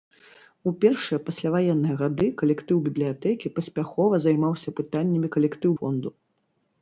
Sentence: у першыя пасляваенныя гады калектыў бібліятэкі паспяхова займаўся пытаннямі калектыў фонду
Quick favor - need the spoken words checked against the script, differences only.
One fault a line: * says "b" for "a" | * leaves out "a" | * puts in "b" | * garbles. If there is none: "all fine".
all fine